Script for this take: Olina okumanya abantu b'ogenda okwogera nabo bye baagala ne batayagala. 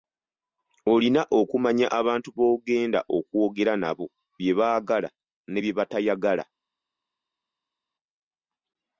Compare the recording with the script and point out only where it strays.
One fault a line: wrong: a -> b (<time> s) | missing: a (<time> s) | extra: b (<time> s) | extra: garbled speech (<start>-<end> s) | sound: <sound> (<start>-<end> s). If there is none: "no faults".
extra: bye (5.6 s)